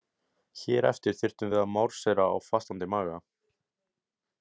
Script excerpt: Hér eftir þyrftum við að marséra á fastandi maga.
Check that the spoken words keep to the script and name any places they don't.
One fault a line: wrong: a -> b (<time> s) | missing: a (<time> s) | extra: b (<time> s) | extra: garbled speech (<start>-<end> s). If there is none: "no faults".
no faults